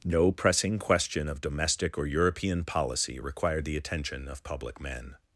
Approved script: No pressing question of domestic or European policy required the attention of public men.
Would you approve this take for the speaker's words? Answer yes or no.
yes